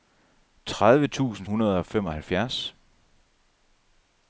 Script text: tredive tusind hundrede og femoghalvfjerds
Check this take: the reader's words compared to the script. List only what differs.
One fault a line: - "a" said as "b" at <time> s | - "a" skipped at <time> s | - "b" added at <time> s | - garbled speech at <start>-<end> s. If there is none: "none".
none